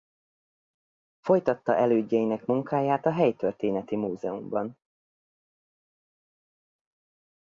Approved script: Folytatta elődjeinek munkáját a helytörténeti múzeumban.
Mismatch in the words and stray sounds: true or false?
false